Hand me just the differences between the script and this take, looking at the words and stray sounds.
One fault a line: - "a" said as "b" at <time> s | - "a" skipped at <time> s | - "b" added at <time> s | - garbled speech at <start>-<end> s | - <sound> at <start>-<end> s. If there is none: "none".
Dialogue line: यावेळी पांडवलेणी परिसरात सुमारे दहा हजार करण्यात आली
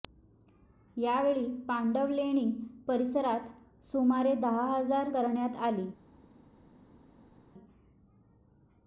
none